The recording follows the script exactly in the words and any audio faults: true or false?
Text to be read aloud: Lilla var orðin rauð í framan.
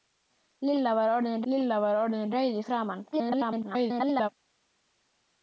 false